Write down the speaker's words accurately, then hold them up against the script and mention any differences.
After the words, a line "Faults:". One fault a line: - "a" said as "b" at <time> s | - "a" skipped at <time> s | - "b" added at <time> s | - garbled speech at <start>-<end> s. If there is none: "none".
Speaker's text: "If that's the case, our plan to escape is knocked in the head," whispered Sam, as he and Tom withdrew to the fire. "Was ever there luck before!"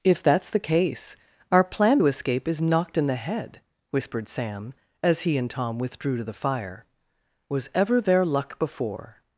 "If that's the case, our plan to escape is knocked in the head," whispered Sam, as he and Tom withdrew to the fire. "Was ever there luck before!"
Faults:
none